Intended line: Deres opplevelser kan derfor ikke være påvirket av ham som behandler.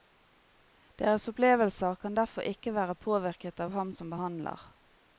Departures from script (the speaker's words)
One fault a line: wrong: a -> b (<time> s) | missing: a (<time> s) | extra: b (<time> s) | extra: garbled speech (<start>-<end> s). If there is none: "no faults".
no faults